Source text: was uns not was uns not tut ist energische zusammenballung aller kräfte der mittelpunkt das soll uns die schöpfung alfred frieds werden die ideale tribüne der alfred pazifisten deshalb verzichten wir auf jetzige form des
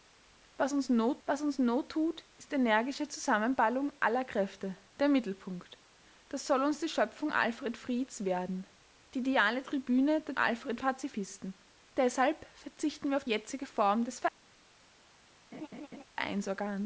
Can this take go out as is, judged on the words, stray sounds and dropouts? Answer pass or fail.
fail